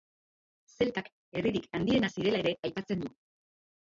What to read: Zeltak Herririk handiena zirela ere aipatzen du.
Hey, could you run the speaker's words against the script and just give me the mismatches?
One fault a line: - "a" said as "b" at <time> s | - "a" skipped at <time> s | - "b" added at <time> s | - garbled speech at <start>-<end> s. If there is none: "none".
none